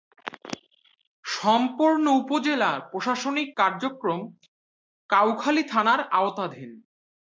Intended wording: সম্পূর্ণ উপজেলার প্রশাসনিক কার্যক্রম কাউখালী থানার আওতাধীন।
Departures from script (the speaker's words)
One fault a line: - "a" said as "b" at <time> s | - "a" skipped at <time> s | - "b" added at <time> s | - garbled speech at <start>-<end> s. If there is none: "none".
none